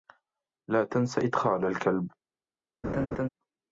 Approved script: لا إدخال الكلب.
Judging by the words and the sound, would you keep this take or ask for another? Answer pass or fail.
fail